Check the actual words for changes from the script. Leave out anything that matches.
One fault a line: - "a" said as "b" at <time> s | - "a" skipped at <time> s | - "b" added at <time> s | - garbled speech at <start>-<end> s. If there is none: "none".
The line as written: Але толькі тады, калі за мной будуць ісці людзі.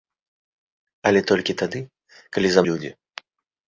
- "мной будуць ісці" skipped at 2.6 s